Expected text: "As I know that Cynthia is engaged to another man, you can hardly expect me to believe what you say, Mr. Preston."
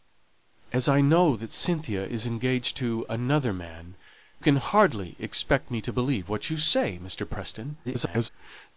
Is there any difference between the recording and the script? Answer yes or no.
yes